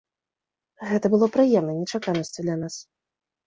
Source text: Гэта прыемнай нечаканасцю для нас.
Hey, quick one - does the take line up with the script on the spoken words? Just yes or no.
no